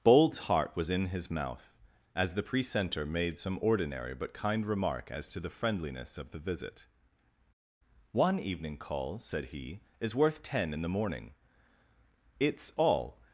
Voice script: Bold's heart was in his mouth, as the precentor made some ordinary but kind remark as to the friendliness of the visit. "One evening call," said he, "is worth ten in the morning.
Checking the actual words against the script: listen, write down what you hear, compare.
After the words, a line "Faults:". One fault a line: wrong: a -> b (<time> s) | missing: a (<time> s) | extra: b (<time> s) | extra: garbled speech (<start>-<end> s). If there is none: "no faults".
Bold's heart was in his mouth, as the precentor made some ordinary but kind remark as to the friendliness of the visit. "One evening call," said he, "is worth ten in the morning. It's all
Faults:
extra: It's all (12.4 s)